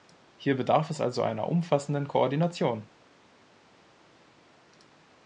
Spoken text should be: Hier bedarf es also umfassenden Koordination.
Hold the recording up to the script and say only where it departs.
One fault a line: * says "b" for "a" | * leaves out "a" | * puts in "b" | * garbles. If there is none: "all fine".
* puts in "einer"